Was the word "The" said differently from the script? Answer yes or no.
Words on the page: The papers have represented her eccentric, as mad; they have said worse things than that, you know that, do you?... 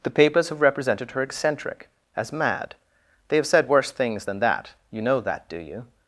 no